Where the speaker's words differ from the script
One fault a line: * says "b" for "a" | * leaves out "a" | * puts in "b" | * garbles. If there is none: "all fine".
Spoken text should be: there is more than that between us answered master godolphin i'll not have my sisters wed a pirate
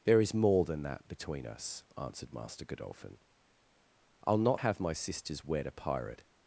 all fine